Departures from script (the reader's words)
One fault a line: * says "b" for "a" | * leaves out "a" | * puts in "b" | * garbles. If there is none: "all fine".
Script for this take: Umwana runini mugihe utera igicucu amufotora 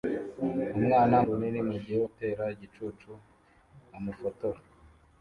all fine